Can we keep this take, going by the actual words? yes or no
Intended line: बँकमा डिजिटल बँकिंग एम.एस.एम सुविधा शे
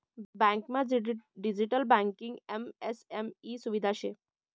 no